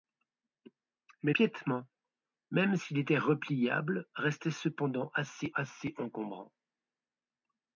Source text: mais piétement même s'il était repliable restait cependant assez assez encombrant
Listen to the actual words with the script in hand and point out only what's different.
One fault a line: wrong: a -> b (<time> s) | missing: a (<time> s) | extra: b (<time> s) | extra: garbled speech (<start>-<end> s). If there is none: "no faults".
no faults